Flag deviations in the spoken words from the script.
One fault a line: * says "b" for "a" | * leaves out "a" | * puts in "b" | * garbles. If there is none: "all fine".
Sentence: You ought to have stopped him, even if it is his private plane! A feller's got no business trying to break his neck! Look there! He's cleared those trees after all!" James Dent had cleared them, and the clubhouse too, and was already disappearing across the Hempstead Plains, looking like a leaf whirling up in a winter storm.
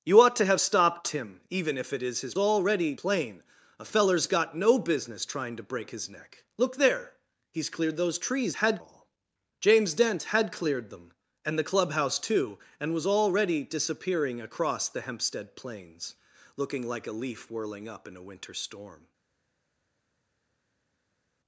* says "already" for "private"
* says "had" for "after"